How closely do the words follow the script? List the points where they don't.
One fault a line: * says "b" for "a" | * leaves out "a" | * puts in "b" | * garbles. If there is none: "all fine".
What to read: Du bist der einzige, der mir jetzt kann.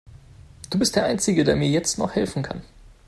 * puts in "noch helfen"